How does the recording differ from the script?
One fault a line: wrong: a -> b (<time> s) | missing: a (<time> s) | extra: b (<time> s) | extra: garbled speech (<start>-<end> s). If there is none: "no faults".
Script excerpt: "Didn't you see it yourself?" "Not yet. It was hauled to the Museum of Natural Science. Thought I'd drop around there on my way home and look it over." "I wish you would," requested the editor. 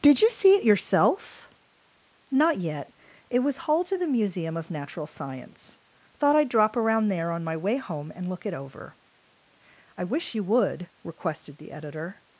wrong: Didn't -> Did (0.0 s)